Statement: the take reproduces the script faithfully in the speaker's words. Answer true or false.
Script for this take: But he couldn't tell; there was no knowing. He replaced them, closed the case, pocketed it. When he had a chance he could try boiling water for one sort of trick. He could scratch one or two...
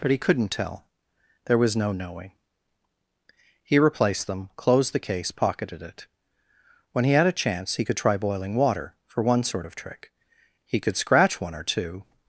true